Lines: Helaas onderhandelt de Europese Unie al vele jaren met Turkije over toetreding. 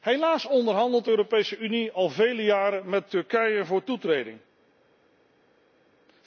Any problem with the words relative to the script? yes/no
no